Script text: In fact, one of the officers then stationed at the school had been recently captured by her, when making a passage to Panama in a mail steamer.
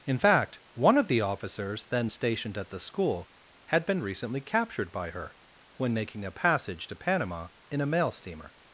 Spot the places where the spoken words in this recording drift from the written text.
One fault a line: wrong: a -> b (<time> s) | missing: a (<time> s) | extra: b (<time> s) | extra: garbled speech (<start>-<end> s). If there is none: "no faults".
no faults